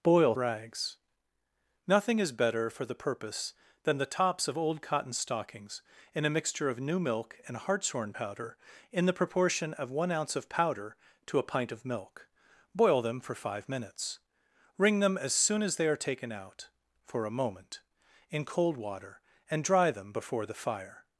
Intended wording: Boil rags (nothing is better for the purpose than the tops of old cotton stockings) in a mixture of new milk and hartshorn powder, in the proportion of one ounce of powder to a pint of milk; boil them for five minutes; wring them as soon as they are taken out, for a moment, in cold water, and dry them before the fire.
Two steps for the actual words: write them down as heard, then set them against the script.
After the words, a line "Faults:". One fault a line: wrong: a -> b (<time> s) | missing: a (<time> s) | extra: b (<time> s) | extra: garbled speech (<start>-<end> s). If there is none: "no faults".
Boil rags (nothing is better for the purpose than the tops of old cotton stockings) in a mixture of new milk and hartshorn powder, in the proportion of one ounce of powder to a pint of milk; boil them for five minutes; wring them as soon as they are taken out, for a moment, in cold water, and dry them before the fire.
Faults:
no faults